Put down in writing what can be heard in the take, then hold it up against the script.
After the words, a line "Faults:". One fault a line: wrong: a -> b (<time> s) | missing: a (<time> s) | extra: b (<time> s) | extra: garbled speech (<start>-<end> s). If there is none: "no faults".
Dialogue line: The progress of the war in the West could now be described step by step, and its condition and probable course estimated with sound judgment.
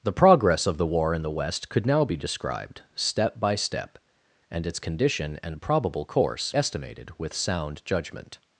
The progress of the war in the West could now be described step by step, and its condition and probable course estimated with sound judgment.
Faults:
no faults